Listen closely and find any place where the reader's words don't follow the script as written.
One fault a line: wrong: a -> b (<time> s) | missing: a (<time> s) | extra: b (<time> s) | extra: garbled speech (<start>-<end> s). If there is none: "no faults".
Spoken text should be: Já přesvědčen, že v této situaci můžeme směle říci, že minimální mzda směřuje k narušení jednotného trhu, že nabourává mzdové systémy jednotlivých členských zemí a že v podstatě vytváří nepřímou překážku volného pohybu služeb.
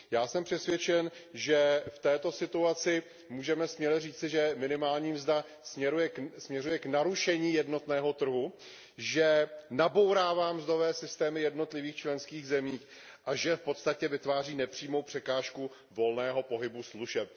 extra: jsem (0.3 s)